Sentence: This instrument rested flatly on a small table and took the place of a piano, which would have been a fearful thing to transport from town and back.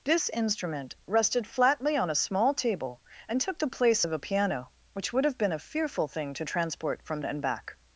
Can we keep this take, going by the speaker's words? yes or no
no